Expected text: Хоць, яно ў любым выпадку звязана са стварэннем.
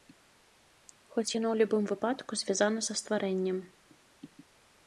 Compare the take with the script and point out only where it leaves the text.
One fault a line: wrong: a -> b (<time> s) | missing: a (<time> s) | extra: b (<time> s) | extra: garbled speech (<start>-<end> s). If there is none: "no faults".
no faults